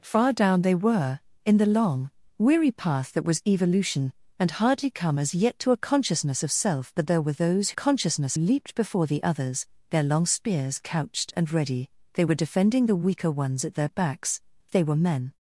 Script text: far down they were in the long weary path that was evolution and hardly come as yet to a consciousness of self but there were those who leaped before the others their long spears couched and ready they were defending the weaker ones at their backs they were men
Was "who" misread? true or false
true